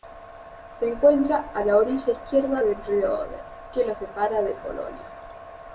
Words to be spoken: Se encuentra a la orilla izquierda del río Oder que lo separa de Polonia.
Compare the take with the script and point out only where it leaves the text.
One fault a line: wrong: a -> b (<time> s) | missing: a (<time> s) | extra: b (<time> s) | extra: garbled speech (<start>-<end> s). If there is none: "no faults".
no faults